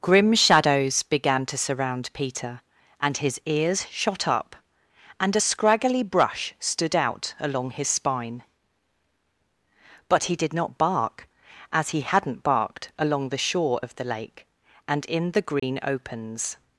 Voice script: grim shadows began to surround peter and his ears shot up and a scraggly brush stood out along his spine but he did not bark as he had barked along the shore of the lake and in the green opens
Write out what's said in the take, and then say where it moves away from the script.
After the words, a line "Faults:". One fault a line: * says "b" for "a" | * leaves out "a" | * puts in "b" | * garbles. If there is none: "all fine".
grim shadows began to surround peter and his ears shot up and a scraggly brush stood out along his spine but he did not bark as he hadn't barked along the shore of the lake and in the green opens
Faults:
* says "hadn't" for "had"